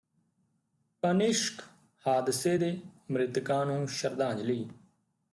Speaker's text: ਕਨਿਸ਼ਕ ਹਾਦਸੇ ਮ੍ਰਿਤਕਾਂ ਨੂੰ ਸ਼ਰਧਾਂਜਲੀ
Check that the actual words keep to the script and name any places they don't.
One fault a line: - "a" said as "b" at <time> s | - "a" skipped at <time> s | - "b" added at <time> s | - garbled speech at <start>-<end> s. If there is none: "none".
- "ਦੇ" added at 2.6 s